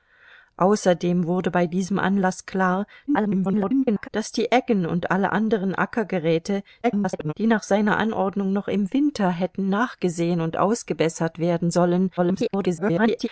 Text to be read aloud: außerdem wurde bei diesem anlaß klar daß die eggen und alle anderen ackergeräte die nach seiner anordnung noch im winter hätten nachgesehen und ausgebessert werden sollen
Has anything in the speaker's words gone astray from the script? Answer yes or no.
yes